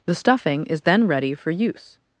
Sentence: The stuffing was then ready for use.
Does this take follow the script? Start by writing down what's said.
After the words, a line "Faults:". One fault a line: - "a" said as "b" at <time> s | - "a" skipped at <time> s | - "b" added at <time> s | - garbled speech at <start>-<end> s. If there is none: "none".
The stuffing is then ready for use.
Faults:
- "was" said as "is" at 0.7 s